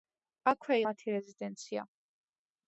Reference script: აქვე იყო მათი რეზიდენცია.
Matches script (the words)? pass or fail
fail